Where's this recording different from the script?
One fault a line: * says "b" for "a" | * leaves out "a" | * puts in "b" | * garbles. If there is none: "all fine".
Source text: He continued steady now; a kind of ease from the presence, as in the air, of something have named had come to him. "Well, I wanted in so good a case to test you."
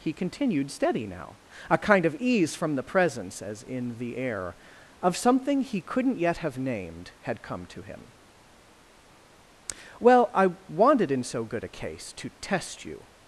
* puts in "he couldn't yet"